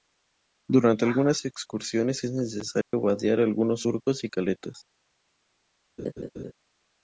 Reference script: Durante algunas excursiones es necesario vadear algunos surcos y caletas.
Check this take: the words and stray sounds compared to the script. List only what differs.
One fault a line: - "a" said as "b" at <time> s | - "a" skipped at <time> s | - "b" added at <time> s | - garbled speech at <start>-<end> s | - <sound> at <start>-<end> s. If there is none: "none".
- dropout at 2.8-2.9 s
- laugh at 6.0-6.5 s